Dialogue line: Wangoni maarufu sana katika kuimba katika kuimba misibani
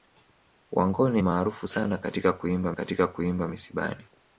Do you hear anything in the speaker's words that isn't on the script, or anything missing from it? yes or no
no